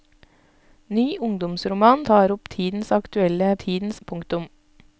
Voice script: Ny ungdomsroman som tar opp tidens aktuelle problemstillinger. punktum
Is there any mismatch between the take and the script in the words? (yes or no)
yes